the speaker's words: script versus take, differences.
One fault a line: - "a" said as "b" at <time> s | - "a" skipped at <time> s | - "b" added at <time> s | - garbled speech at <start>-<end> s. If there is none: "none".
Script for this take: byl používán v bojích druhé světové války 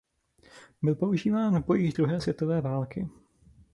none